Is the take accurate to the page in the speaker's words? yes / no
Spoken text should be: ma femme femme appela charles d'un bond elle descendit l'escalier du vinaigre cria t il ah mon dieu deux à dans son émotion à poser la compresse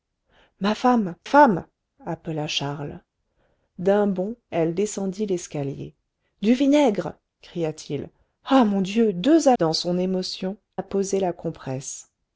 yes